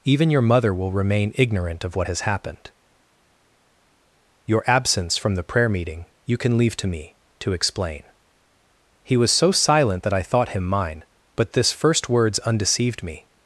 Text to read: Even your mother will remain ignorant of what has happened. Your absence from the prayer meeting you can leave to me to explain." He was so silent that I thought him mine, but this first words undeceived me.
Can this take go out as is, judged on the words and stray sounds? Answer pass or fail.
pass